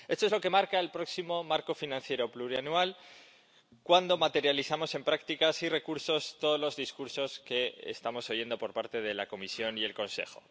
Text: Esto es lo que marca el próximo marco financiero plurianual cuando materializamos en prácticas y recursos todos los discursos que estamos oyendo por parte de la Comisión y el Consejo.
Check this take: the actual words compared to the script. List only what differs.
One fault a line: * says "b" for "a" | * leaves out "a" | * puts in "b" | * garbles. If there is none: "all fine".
all fine